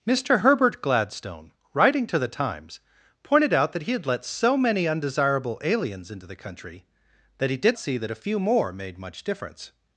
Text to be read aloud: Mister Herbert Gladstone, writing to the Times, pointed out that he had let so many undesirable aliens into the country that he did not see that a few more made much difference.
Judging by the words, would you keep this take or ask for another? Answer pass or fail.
fail